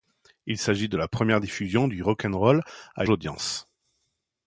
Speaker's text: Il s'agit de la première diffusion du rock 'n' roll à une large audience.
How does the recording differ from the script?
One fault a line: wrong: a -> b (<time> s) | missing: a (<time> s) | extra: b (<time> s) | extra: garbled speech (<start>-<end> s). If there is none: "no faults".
missing: une large (3.0 s)